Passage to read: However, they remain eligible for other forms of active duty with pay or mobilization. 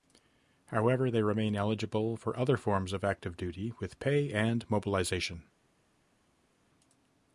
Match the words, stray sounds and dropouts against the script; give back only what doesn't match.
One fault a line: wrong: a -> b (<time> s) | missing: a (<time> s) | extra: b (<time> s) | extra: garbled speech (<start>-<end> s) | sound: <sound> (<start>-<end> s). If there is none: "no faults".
wrong: or -> and (4.3 s)